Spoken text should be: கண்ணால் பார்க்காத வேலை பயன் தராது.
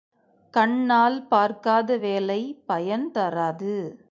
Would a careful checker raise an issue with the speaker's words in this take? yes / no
no